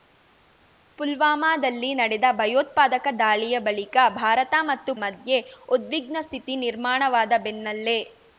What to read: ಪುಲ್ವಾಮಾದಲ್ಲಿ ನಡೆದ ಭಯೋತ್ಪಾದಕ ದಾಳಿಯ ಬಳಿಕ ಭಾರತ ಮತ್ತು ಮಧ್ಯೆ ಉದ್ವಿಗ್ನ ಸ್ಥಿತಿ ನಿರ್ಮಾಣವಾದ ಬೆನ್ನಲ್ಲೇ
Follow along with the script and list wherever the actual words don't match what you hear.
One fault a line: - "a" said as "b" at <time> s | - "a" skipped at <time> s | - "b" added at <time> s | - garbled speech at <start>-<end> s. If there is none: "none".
none